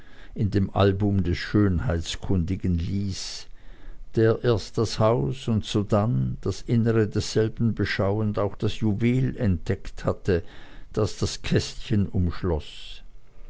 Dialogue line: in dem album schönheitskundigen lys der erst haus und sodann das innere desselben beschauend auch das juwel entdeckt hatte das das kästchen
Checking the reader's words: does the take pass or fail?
fail